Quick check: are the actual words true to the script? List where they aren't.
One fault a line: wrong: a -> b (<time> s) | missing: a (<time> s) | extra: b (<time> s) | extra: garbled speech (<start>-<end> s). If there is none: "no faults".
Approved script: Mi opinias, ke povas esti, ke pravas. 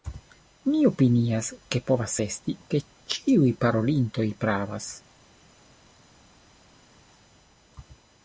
extra: ĉiuj parolintoj (3.1 s)